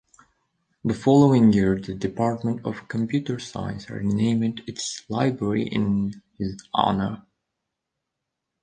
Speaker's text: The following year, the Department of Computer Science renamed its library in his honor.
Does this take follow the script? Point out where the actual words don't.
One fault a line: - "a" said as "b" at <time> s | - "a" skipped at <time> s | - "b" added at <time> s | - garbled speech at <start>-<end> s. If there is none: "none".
none